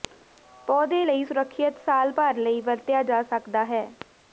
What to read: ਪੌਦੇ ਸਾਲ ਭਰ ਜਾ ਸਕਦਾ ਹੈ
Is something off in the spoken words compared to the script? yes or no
yes